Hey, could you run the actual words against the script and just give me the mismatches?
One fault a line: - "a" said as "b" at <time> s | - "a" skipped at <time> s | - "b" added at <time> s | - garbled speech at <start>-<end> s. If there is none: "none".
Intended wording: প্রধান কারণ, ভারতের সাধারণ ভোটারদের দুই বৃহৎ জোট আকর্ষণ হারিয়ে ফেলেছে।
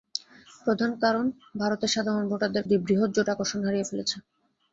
none